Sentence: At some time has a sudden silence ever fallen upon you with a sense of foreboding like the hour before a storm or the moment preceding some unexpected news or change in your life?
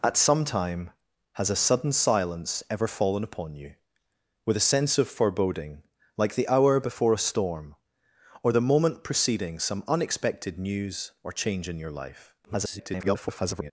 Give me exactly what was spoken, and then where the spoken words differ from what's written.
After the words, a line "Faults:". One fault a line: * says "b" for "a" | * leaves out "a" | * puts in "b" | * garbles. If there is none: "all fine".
At some time has a sudden silence ever fallen upon you with a sense of foreboding like the hour before a storm or the moment preceding some unexpected news or change in your life? [garbled]
Faults:
* garbles